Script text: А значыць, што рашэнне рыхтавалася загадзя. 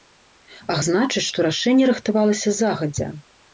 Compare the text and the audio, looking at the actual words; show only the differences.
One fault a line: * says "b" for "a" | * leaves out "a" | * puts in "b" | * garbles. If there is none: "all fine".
all fine